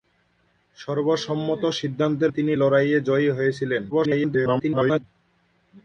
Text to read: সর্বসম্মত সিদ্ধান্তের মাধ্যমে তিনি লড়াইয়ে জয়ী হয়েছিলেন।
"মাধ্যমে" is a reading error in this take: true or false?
true